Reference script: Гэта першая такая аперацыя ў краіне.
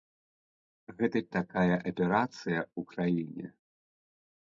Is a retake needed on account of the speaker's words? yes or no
yes